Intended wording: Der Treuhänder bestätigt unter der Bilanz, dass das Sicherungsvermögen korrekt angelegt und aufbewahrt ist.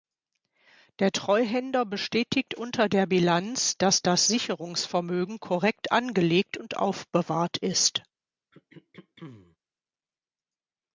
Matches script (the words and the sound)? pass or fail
fail